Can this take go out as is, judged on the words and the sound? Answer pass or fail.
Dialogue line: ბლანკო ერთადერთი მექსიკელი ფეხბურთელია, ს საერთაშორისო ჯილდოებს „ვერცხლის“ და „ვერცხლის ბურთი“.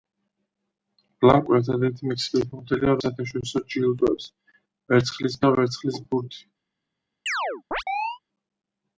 fail